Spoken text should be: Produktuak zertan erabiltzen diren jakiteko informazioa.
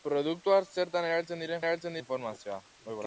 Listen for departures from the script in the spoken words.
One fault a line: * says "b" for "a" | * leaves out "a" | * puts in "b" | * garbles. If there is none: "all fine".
* says "erabiltzen" for "jakiteko"